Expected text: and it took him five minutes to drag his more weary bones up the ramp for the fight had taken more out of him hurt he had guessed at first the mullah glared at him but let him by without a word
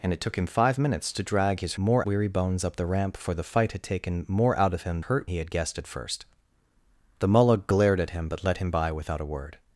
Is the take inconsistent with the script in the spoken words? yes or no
no